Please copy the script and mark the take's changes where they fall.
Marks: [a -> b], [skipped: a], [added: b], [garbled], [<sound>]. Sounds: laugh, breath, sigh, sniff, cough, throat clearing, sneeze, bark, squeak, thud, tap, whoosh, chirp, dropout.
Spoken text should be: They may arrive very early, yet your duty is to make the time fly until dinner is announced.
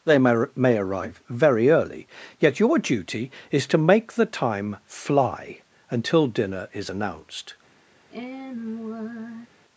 They may [added: may] arrive very early, yet your duty is to make the time fly until dinner is announced. [sigh]